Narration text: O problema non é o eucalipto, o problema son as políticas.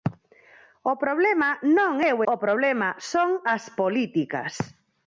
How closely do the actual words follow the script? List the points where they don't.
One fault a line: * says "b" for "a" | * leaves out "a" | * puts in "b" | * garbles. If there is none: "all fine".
* leaves out "eucalipto"